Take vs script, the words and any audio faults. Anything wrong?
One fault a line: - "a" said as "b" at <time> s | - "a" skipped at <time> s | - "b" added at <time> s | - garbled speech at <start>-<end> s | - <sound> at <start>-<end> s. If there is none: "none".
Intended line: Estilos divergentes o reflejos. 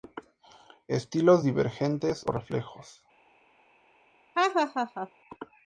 - laugh at 4.3-5.1 s